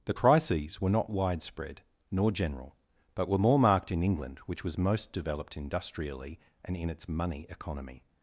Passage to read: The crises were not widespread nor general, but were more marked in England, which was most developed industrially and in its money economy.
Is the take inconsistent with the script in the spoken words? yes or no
no